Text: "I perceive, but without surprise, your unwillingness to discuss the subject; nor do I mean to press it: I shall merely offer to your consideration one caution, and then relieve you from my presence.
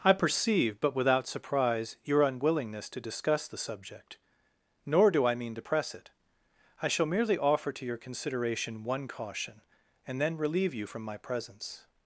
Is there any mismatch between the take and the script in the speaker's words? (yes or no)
no